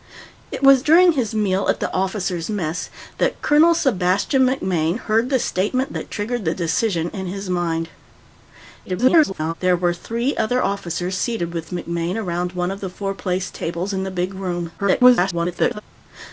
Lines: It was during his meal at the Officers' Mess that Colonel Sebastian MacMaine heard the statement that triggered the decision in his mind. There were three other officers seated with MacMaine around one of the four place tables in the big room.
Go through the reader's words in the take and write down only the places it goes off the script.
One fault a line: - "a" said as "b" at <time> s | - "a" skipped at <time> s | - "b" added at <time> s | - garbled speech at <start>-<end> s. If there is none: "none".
- garbled speech at 8.9-9.5 s
- garbled speech at 14.8-15.8 s